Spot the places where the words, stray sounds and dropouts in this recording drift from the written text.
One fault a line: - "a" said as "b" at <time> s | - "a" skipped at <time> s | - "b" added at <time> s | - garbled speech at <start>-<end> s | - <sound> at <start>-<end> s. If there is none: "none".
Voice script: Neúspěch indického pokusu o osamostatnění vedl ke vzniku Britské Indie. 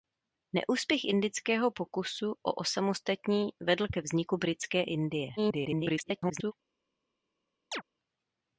- garbled speech at 5.4-6.5 s
- chirp at 7.7-7.8 s